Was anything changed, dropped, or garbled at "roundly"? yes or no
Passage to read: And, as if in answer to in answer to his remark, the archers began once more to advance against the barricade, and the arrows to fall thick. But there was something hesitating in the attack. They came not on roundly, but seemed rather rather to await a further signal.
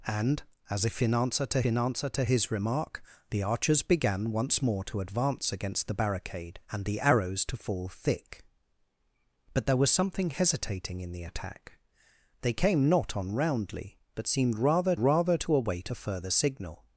no